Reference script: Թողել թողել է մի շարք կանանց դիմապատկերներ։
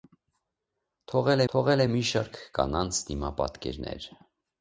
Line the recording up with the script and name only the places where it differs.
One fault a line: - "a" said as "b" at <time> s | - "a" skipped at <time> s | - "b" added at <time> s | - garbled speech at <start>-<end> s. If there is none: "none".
none